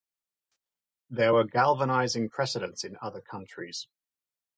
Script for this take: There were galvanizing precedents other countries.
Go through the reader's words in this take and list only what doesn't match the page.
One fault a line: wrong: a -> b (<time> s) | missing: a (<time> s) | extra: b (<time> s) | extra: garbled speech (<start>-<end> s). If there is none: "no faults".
extra: in (2.8 s)